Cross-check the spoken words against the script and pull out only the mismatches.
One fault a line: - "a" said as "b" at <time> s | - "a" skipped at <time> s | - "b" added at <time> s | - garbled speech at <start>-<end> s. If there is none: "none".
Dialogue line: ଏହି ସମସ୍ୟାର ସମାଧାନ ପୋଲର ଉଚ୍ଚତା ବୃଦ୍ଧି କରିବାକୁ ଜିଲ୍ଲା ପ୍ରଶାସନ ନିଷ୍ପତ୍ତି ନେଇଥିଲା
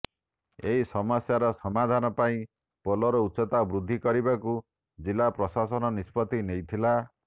- "ପାଇଁ" added at 2.2 s